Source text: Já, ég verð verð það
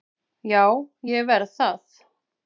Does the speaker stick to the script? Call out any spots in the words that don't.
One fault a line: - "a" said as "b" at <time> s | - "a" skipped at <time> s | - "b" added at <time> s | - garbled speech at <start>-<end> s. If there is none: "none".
- "verð" skipped at 1.5 s